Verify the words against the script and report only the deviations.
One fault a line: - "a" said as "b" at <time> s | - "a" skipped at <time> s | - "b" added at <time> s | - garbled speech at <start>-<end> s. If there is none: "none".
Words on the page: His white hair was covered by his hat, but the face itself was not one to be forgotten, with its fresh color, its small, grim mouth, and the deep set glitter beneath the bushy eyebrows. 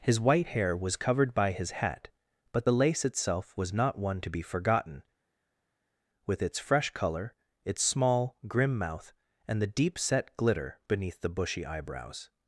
- "face" said as "lace" at 2.7 s